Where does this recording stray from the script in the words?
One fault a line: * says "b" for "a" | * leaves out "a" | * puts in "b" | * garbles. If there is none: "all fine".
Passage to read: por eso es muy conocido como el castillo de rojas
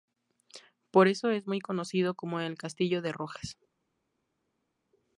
all fine